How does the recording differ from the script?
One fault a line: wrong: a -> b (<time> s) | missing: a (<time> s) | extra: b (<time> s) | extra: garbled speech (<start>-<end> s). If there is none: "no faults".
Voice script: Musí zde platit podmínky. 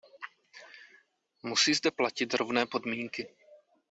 extra: rovné (2.3 s)